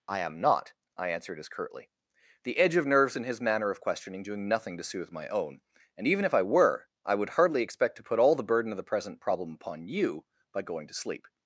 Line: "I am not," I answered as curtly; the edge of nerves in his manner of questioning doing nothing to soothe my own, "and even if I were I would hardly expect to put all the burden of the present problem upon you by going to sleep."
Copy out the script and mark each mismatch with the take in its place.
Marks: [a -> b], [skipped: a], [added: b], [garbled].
"I am not," I answered as curtly; the edge of nerves in his manner of questioning doing nothing to soothe my own, "and even if I were I would hardly expect to put all the burden of the present problem upon you by going to sleep."